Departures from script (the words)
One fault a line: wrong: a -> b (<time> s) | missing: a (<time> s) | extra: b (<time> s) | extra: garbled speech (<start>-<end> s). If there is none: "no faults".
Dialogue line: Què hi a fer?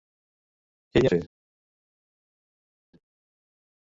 no faults